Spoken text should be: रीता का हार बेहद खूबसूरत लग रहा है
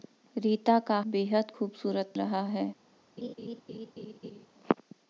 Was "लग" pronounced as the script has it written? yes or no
no